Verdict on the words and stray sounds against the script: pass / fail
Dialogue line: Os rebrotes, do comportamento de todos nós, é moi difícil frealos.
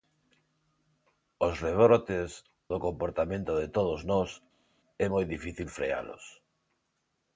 pass